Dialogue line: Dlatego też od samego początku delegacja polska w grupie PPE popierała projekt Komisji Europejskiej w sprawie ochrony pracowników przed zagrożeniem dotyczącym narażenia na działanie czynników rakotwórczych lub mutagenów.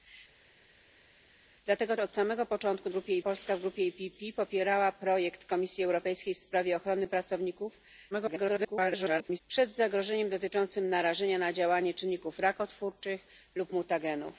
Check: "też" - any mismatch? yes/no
yes